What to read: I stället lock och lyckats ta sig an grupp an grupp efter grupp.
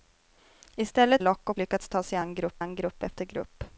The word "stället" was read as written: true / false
true